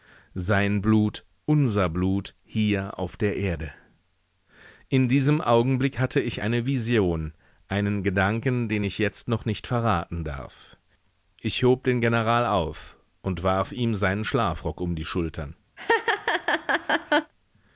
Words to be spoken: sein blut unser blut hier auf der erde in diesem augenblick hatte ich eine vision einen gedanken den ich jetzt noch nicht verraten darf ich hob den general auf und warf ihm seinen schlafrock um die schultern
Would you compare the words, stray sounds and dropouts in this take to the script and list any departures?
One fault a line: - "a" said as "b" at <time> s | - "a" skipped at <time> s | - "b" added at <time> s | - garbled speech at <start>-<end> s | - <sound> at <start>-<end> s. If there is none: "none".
- laugh at 15.8-17.3 s